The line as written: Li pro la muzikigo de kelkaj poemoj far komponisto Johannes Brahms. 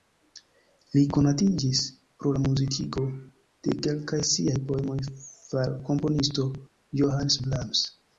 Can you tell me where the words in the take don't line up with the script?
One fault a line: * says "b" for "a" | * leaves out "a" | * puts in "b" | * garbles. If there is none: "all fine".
* puts in "konatiĝis"
* puts in "siaj"